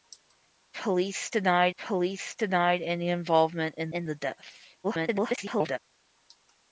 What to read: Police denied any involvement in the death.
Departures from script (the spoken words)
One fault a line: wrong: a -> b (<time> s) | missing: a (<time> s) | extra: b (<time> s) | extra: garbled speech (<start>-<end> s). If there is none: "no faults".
extra: police denied (1.8 s)
extra: in (3.9 s)
extra: garbled speech (4.8-5.8 s)